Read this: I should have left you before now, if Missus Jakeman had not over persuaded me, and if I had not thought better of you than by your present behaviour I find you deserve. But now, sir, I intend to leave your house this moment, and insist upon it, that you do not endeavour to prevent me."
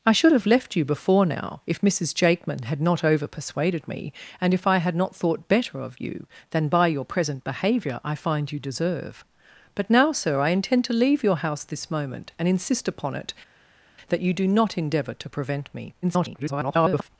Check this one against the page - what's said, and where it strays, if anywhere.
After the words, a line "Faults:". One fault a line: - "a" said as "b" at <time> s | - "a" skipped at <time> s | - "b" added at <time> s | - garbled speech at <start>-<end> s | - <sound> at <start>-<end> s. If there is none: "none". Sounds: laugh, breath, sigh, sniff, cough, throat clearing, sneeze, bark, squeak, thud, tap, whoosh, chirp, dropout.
I should have left you before now, if Missus Jakeman had not over persuaded me, and if I had not thought better of you than by your present behaviour I find you deserve. But now, sir, I intend to leave your house this moment, and insist upon it, that you do not endeavour to prevent me." [garbled]
Faults:
- garbled speech at 16.0-17.1 s